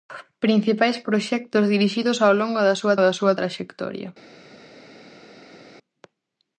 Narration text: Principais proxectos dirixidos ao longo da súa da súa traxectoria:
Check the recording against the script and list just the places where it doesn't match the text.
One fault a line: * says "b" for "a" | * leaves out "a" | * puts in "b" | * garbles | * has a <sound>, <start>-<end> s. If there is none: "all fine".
all fine